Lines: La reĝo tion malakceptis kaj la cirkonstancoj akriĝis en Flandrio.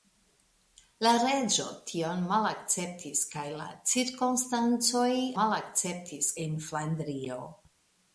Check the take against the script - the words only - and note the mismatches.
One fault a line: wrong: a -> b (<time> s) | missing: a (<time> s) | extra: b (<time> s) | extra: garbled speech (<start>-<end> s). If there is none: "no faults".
wrong: akriĝis -> malakceptis (5.4 s)